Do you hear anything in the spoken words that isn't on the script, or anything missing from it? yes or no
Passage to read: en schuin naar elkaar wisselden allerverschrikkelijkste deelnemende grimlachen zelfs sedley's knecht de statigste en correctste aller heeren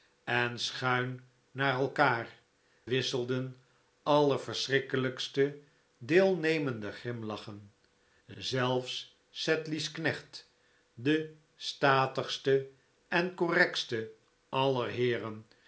no